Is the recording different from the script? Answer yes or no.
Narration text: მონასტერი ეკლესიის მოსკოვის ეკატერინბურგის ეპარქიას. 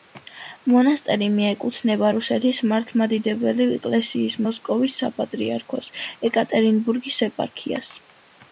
yes